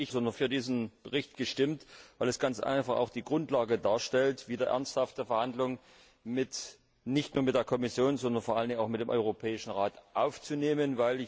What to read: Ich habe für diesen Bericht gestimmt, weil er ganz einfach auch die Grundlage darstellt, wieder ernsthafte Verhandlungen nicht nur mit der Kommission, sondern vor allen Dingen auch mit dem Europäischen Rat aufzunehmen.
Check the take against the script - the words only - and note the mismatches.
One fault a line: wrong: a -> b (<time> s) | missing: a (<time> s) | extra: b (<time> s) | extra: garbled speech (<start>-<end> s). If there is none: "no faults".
wrong: habe -> sondern (0.1 s)